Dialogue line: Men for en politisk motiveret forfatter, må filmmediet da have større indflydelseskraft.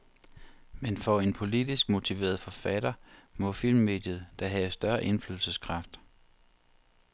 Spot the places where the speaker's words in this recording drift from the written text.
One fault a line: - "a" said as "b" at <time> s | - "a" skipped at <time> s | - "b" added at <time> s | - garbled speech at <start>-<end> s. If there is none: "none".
none